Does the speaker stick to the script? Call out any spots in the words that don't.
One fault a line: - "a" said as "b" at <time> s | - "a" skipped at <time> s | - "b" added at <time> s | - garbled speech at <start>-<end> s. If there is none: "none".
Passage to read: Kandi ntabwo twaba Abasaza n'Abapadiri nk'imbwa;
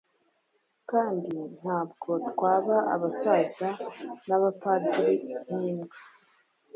none